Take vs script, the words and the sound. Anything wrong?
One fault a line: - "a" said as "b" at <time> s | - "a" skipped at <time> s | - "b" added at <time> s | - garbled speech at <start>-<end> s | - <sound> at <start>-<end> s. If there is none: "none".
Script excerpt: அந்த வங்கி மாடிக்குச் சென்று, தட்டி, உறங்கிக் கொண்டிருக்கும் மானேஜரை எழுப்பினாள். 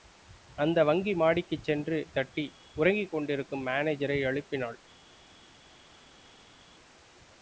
none